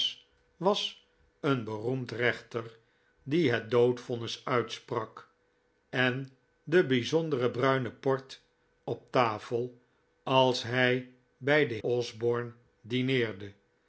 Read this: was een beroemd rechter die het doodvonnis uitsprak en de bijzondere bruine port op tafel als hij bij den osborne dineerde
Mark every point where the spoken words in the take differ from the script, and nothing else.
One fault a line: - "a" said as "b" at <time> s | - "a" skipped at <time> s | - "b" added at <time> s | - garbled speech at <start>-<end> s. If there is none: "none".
none